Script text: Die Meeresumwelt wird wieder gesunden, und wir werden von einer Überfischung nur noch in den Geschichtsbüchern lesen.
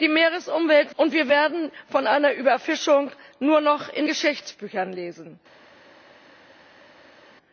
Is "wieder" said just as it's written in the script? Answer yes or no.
no